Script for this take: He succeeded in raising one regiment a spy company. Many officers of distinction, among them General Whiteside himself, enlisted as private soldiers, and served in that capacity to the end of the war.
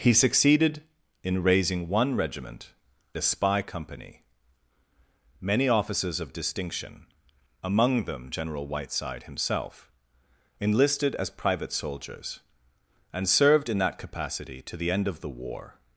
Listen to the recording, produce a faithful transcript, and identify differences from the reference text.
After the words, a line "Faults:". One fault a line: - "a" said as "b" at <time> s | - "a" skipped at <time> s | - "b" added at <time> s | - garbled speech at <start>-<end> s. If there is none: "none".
He succeeded in raising one regiment a spy company. Many officers of distinction, among them General Whiteside himself, enlisted as private soldiers, and served in that capacity to the end of the war.
Faults:
none